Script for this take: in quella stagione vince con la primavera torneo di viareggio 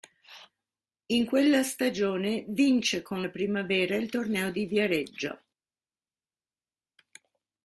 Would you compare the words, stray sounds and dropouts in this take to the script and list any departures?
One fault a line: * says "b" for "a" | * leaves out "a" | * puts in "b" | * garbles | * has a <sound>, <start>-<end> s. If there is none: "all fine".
* puts in "il"